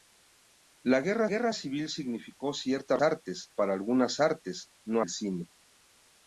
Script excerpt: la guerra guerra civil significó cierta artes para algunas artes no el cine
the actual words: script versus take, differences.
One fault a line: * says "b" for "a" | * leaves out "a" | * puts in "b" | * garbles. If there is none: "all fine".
all fine